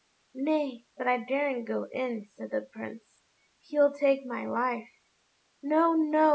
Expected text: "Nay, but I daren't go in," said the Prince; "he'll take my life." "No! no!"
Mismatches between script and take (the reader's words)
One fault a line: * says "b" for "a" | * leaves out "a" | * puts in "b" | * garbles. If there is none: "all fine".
all fine